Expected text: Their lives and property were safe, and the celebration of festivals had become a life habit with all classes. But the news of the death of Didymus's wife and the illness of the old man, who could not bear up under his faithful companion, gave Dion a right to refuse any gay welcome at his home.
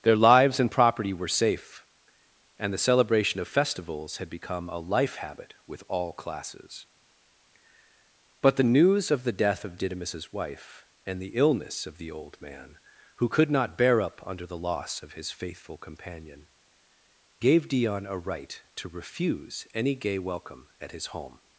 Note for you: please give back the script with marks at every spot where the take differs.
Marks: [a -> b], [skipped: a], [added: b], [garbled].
Their lives and property were safe, and the celebration of festivals had become a life habit with all classes. But the news of the death of Didymus's wife and the illness of the old man, who could not bear up under [added: the loss of] his faithful companion, gave Dion a right to refuse any gay welcome at his home.